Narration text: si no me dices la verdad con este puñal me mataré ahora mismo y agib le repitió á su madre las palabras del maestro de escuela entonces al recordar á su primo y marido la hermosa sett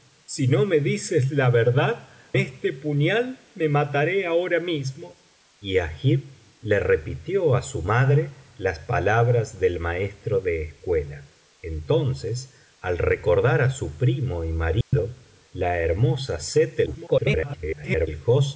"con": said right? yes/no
no